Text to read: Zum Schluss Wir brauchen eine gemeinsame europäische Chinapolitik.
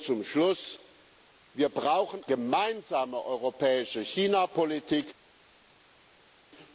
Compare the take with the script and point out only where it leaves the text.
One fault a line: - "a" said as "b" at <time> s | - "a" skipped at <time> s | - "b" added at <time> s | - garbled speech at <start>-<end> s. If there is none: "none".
- "eine" skipped at 2.2 s